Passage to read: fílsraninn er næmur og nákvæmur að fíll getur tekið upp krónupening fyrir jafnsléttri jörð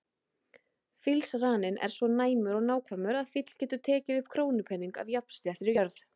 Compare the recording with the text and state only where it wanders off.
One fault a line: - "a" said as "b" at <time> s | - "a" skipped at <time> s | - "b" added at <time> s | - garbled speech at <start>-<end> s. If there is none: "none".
- "svo" added at 2.0 s
- "fyrir" said as "af" at 5.0 s